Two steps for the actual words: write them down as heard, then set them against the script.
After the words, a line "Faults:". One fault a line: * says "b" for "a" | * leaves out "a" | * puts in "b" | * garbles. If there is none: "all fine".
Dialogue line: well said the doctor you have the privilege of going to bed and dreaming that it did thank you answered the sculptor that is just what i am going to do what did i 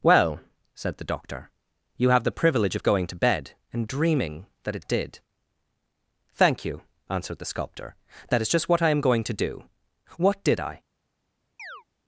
well said the doctor you have the privilege of going to bed and dreaming that it did thank you answered the sculptor that is just what i am going to do what did i
Faults:
all fine